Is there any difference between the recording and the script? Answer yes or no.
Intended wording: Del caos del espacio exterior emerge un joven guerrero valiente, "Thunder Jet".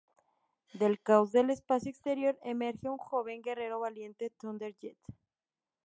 no